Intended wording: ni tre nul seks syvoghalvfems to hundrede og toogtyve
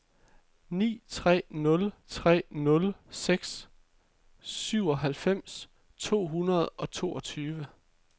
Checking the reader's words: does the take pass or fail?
fail